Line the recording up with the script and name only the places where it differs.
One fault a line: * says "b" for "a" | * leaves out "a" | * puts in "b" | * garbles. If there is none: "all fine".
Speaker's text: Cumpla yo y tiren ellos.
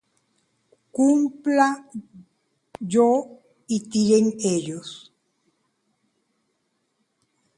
all fine